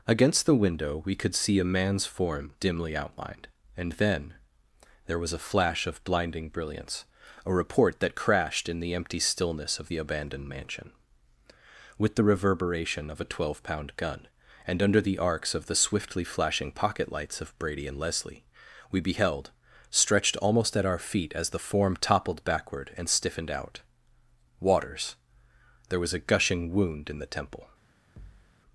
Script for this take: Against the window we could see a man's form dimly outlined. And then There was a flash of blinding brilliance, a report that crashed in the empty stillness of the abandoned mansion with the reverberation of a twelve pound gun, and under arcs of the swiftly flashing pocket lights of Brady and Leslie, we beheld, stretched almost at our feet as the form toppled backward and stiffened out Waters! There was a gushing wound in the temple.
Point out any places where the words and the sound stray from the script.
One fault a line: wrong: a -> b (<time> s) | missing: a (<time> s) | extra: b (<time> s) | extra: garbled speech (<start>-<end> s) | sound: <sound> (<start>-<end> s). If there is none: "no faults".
extra: the (15.0 s)
sound: thud (28.2-28.5 s)